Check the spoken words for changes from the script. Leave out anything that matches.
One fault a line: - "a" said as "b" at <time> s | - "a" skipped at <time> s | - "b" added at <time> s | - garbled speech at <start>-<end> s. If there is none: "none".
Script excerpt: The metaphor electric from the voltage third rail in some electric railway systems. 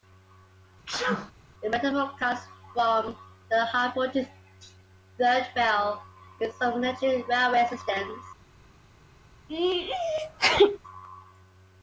- "electric" said as "comes" at 2.2 s
- "high" added at 3.7 s